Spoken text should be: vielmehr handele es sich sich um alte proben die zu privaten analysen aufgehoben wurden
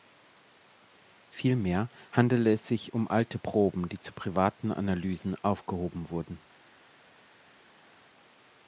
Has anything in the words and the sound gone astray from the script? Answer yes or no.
yes